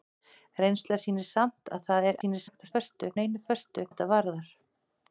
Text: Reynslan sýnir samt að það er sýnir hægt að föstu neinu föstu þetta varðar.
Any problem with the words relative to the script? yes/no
no